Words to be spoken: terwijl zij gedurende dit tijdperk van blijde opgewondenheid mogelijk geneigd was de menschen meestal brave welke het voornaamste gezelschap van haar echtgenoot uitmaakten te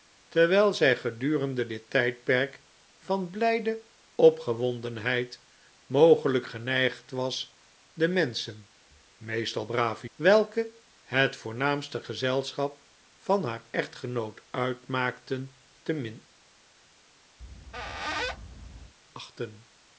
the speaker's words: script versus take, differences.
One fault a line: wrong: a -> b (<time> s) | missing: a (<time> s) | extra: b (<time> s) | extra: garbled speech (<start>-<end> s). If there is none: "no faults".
no faults